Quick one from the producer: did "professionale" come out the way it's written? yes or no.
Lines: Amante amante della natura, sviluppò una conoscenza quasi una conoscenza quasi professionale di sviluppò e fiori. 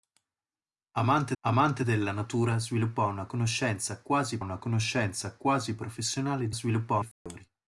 yes